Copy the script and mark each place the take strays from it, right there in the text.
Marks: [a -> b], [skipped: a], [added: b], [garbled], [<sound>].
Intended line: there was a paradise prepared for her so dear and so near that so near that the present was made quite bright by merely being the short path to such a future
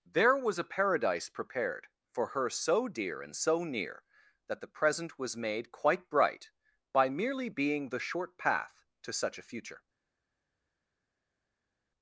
there was a paradise prepared for her so dear and so near that [skipped: so near that] the present was made quite bright by merely being the short path to such a future